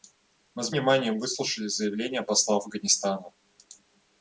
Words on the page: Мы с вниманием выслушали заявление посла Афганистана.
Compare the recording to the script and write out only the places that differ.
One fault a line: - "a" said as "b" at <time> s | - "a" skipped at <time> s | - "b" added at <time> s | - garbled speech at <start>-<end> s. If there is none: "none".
none